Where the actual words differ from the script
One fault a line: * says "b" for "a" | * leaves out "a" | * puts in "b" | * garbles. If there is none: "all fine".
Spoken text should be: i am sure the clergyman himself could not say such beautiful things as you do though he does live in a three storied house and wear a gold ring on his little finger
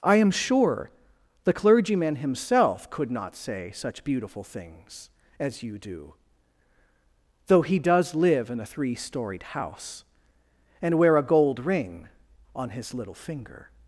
all fine